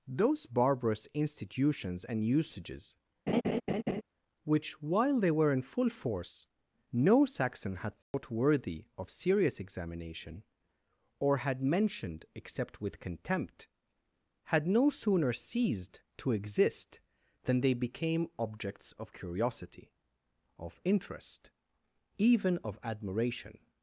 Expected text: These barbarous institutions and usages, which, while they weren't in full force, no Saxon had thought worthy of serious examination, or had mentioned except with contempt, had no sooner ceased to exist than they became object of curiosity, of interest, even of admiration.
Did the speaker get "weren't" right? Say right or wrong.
wrong